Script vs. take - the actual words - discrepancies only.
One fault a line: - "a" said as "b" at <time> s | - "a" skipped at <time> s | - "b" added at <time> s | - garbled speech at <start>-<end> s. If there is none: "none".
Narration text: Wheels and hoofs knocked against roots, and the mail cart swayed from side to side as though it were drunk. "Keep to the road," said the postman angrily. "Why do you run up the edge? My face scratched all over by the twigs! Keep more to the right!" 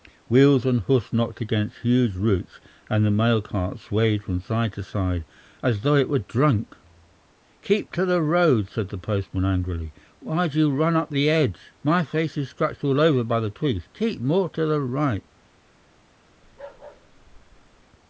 - "huge" added at 1.8 s
- "is" added at 12.4 s